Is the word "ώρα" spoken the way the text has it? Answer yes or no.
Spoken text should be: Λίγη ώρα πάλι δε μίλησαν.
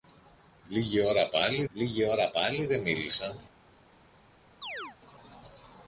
yes